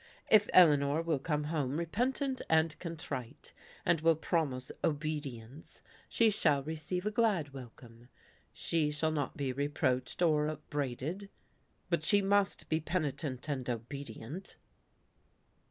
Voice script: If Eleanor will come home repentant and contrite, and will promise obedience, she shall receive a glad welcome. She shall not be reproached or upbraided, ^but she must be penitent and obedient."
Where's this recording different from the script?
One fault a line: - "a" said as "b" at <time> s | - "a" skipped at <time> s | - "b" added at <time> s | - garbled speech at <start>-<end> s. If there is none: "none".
none